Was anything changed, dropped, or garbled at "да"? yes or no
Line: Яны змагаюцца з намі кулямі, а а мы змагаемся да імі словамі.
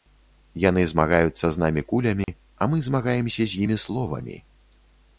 yes